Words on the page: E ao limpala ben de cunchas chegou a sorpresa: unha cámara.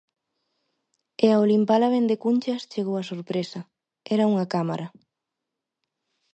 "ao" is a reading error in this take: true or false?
false